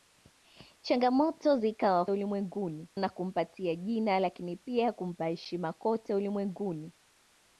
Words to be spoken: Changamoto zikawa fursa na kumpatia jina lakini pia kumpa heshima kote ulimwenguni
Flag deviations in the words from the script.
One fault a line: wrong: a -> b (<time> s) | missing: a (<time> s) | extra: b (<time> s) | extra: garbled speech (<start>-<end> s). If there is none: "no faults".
wrong: fursa -> ulimwenguni (2.1 s)